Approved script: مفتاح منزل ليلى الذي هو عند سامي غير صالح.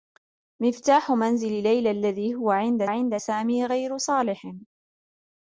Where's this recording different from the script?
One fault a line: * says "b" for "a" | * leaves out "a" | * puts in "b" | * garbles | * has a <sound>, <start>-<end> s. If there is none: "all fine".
* puts in "عند"